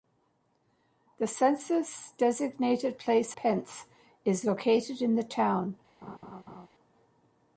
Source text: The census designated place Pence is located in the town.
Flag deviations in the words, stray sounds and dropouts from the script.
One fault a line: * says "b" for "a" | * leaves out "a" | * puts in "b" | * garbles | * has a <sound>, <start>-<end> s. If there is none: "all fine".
* has a laugh, 6.0-6.7 s